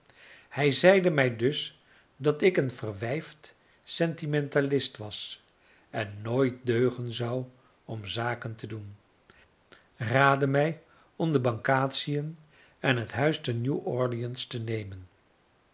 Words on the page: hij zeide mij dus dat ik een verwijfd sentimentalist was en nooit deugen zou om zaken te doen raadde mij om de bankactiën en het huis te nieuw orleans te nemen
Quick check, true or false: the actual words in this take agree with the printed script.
true